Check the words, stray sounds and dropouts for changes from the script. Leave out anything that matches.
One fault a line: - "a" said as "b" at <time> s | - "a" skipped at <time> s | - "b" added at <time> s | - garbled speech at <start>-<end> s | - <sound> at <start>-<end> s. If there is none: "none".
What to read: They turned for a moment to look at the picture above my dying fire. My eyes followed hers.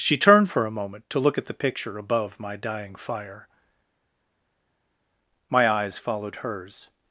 - "They" said as "She" at 0.0 s